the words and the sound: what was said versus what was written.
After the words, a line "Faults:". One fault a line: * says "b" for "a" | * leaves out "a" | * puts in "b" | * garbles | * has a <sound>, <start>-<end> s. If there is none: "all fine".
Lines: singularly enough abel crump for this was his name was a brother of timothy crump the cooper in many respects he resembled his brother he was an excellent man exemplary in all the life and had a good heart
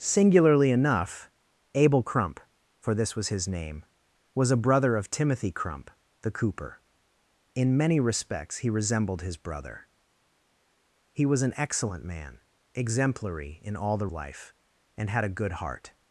singularly enough abel crump for this was his name was a brother of timothy crump the cooper in many respects he resembled his brother he was an excellent man exemplary in all the life and had a good heart
Faults:
all fine